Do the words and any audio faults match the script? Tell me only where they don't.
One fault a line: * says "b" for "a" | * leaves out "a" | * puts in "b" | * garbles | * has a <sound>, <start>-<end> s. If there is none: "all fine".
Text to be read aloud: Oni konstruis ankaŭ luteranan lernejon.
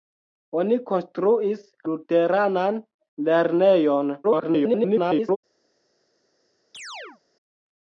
* leaves out "ankaŭ"
* garbles
* has a chirp, 6.7-7.2 s